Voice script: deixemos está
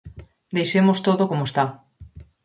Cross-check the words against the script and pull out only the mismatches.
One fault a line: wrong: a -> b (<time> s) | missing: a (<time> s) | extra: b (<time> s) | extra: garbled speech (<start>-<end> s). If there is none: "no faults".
extra: todo como (1.1 s)